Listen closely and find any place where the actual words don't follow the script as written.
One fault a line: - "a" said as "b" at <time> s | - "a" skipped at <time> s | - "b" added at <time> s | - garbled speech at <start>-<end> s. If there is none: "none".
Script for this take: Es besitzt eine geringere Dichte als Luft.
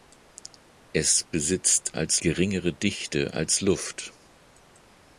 - "eine" said as "als" at 1.9 s